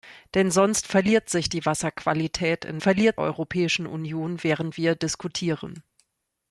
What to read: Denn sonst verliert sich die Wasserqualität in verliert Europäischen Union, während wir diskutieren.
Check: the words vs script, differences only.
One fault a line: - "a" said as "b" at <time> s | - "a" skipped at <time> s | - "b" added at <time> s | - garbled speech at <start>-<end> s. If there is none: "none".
none